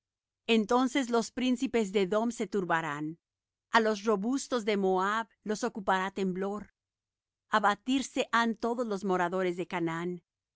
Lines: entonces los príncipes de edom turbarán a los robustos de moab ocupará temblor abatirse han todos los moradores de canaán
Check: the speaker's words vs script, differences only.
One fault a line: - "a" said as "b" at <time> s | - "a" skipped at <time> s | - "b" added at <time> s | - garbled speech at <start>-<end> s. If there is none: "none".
- "se" added at 2.3 s
- "los" added at 5.4 s